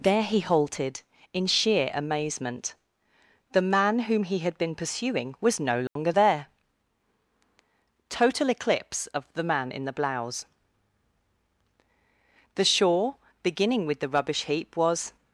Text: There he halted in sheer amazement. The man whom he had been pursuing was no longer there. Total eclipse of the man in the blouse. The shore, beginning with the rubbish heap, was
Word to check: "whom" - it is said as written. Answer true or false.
true